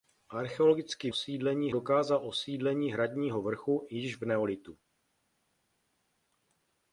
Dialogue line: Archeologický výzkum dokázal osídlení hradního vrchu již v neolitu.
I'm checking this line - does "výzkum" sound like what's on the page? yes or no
no